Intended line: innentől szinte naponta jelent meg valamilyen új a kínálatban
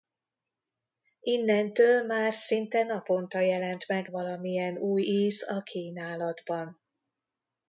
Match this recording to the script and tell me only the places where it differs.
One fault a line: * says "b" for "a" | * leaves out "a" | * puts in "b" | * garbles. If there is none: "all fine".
* puts in "már"
* puts in "íz"